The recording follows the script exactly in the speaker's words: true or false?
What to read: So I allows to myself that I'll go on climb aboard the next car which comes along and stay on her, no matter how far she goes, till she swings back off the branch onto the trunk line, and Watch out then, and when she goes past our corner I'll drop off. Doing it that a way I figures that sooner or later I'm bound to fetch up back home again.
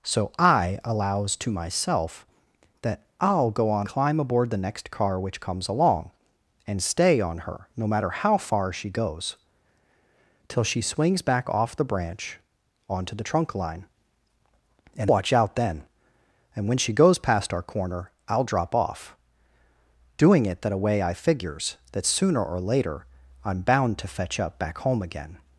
true